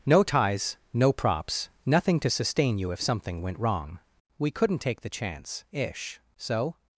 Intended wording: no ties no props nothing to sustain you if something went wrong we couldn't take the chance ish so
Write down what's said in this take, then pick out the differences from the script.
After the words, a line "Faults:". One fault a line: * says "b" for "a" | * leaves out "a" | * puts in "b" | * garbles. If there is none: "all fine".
no ties no props nothing to sustain you if something went wrong we couldn't take the chance ish so
Faults:
all fine